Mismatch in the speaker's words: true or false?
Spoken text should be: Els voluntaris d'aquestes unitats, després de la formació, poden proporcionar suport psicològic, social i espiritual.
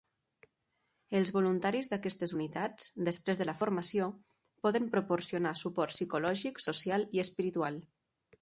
false